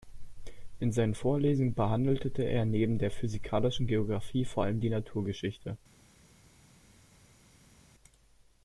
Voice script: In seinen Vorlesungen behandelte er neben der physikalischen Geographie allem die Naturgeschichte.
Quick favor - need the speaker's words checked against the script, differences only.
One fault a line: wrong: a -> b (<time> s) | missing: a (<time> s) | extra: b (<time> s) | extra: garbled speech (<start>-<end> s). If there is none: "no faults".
extra: vor (4.5 s)